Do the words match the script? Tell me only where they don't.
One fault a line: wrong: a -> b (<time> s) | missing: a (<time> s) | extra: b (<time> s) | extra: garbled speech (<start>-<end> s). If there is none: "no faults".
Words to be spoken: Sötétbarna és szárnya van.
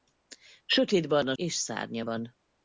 no faults